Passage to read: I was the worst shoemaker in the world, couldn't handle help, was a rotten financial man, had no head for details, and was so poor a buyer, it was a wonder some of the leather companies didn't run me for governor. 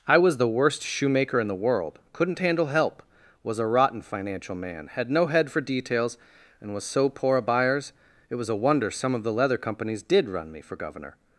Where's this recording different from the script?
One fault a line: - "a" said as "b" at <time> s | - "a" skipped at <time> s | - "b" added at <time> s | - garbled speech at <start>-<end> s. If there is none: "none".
- "buyer" said as "buyers" at 7.4 s
- "didn't" said as "did" at 10.0 s